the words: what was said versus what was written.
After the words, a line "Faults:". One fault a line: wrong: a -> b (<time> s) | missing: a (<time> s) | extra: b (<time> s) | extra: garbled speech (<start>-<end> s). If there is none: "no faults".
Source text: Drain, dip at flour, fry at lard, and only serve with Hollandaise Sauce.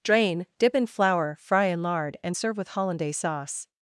Drain, dip in flour, fry in lard, and serve with Hollandaise Sauce.
Faults:
wrong: at -> in (0.7 s)
wrong: at -> in (1.7 s)
missing: only (2.4 s)